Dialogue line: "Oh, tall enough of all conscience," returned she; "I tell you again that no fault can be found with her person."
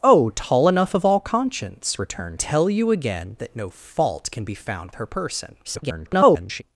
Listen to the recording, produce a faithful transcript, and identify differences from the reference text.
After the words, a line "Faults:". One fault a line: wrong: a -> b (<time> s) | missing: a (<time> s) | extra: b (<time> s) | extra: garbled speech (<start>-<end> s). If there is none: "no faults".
"Oh, tall enough of all conscience," returned tell you again that no fault can be found her person." [garbled]
Faults:
missing: she I (2.4 s)
missing: with (4.9 s)
extra: garbled speech (5.6-6.6 s)